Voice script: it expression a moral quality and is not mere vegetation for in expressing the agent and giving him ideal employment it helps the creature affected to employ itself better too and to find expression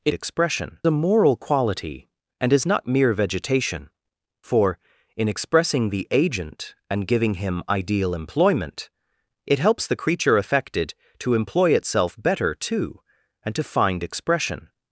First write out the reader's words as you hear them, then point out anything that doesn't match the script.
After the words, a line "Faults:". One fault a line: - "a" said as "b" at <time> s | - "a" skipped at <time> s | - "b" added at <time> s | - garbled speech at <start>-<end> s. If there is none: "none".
it expression a moral quality and is not mere vegetation for in expressing the agent and giving him ideal employment it helps the creature affected to employ itself better too and to find expression
Faults:
none